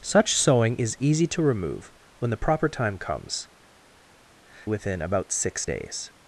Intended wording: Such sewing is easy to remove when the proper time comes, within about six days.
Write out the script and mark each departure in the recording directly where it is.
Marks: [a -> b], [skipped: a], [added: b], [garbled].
Such sewing is easy to remove when the proper time comes, within about six days.